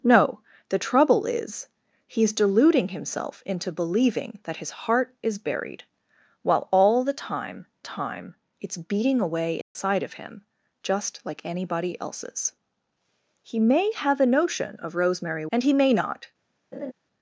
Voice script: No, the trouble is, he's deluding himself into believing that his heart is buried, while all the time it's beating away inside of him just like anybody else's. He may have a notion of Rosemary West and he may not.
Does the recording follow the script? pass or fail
fail